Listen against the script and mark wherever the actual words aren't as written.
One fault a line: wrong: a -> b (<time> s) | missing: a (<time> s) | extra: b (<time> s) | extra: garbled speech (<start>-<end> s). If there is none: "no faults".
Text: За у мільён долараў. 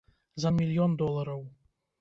no faults